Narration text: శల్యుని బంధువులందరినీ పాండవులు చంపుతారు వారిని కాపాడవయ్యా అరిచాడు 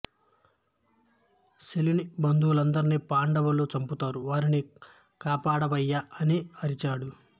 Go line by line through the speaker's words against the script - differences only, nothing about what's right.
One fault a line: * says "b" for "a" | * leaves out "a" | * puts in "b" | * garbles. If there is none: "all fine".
* puts in "అని"